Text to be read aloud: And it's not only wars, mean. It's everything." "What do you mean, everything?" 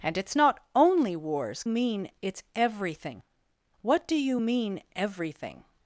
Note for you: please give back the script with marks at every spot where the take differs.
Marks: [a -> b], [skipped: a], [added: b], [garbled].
And it's not only wars, mean. It's everything." "What do you mean, everything?"